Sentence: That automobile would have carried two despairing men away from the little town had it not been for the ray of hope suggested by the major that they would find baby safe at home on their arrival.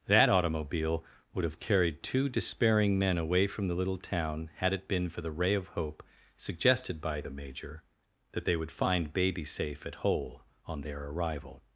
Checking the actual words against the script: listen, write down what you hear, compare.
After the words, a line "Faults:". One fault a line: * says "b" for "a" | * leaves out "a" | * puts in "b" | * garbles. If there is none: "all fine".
That automobile would have carried two despairing men away from the little town had it been for the ray of hope suggested by the major that they would find baby safe at hole on their arrival.
Faults:
* leaves out "not"
* says "hole" for "home"